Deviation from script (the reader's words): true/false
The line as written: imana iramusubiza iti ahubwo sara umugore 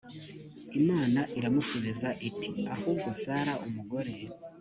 false